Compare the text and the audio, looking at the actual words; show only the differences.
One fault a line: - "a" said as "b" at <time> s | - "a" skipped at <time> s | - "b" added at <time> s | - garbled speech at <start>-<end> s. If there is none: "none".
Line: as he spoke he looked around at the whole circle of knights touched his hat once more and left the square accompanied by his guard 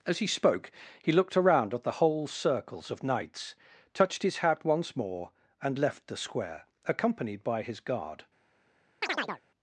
- "circle" said as "circles" at 2.3 s